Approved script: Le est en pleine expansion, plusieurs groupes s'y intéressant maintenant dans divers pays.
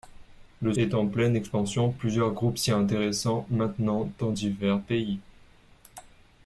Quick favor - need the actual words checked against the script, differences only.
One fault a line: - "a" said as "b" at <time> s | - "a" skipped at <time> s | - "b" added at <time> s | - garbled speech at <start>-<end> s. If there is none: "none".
none